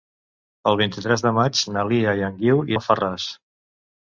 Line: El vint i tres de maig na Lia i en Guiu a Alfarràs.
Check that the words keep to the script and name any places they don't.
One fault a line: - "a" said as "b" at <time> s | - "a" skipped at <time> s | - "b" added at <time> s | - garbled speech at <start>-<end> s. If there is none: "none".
none